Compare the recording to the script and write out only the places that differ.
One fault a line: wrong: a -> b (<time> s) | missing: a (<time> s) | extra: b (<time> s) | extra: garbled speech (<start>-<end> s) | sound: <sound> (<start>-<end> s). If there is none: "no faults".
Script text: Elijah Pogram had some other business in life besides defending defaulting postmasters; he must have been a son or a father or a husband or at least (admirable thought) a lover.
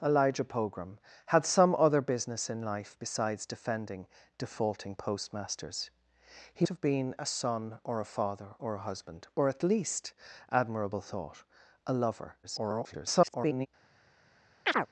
missing: must (6.6 s)
extra: garbled speech (12.4-13.7 s)
sound: chirp (14.7-14.9 s)